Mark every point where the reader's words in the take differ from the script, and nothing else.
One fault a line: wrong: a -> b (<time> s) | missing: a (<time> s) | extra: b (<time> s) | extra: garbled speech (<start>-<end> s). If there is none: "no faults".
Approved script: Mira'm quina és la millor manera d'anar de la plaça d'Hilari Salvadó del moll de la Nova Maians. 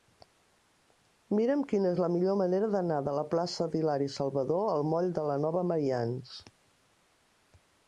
wrong: del -> al (4.7 s)